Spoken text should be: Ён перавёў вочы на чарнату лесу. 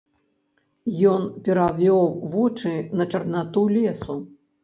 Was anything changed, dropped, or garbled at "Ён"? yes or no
no